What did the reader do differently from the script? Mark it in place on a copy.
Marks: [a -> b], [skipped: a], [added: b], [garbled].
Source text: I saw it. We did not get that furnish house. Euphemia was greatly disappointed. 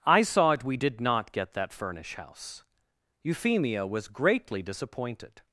I saw it. We did not get that furnish house. Euphemia was greatly disappointed.